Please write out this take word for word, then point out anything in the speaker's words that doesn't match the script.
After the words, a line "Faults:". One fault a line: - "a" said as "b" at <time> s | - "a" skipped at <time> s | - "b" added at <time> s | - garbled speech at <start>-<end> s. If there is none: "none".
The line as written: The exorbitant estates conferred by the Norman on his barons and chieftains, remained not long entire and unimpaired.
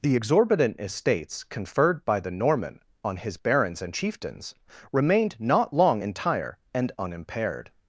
The exorbitant estates conferred by the Norman on his barons and chieftains, remained not long entire and unimpaired.
Faults:
none